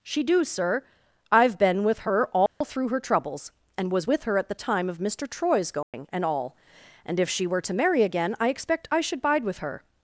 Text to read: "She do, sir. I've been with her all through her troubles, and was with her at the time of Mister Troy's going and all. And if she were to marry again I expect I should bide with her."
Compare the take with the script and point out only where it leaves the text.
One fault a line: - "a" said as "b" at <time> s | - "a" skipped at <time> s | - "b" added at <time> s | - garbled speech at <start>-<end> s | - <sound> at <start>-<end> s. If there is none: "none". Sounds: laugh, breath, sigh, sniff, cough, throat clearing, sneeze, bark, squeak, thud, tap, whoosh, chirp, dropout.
- dropout at 2.5-2.6 s
- dropout at 5.8-5.9 s